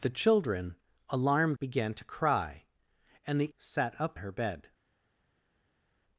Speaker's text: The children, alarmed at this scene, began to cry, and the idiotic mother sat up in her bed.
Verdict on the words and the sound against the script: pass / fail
fail